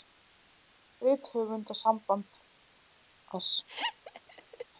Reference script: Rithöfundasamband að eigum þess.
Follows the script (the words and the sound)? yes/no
no